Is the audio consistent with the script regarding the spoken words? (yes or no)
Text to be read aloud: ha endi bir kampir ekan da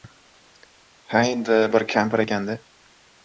yes